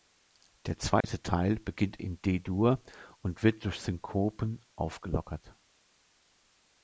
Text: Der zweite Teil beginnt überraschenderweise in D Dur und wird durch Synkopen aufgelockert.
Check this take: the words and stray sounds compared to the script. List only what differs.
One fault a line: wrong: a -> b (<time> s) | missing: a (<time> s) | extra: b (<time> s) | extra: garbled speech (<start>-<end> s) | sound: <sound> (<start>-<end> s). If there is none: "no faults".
sound: dropout (1.0-1.0 s)
missing: überraschenderweise (2.0 s)